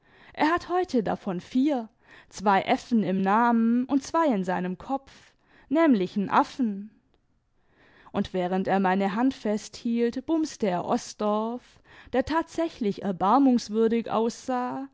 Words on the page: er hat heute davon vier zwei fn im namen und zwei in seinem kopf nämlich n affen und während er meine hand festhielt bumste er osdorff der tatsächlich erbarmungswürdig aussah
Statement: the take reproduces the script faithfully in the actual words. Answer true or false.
true